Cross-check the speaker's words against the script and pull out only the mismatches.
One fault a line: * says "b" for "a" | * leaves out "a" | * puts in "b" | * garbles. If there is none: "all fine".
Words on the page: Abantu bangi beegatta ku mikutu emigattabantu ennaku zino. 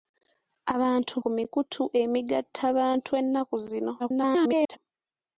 * leaves out "bangi beegatta"
* garbles